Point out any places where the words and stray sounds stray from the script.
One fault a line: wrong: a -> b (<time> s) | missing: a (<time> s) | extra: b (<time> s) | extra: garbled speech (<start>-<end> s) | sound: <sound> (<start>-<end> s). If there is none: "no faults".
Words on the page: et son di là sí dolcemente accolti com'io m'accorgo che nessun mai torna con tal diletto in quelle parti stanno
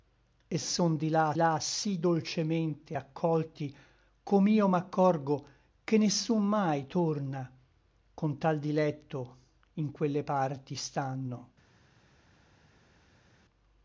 extra: là (1.3 s)